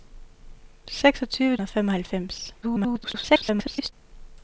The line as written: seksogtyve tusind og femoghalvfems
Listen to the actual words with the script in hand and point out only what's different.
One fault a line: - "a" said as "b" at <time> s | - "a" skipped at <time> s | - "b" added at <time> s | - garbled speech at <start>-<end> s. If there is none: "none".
- "tusind" skipped at 1.6 s
- garbled speech at 2.6-3.9 s